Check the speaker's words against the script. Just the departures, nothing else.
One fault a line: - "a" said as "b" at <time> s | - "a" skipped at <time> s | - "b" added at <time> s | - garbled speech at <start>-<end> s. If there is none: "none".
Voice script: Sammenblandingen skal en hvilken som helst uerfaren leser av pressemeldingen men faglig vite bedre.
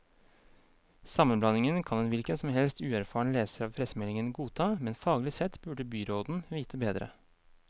- "skal" said as "kan" at 1.8 s
- "godta" added at 4.4 s
- "sett burde byråden" added at 5.3 s